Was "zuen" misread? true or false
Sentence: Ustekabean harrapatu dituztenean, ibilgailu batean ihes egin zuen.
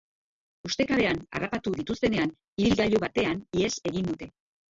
true